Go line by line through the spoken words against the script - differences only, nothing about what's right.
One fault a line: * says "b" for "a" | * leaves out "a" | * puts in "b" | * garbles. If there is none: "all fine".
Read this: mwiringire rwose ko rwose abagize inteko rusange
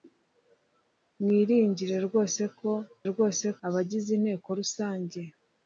all fine